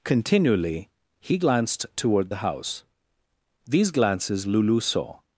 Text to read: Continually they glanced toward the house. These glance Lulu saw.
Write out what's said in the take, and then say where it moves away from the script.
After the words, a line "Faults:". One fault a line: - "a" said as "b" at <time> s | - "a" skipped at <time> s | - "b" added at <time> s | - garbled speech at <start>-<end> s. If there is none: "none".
Continually he glanced toward the house. These glances Lulu saw.
Faults:
- "they" said as "he" at 1.2 s
- "glance" said as "glances" at 3.9 s